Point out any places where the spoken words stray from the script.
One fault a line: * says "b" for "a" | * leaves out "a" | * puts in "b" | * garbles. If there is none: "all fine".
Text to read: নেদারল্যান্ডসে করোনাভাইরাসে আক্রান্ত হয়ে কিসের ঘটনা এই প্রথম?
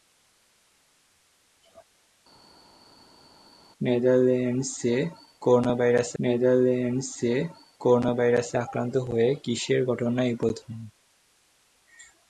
* puts in "নেদারল্যান্ডসে করোনাভাইরাসে"